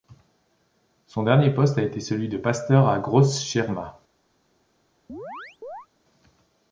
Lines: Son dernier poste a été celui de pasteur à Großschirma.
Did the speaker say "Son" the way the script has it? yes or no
yes